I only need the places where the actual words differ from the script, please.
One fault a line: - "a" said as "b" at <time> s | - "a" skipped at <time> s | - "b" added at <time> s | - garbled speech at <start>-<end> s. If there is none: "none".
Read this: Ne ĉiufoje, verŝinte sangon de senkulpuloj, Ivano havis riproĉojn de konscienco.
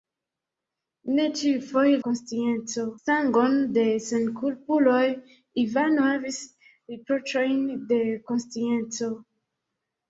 - "verŝinte" said as "konscienco" at 2.1 s